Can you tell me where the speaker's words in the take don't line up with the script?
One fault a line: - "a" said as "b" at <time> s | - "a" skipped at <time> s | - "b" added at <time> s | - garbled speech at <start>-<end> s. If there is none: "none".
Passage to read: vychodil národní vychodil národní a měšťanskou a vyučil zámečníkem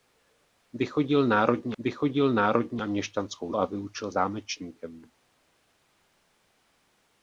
none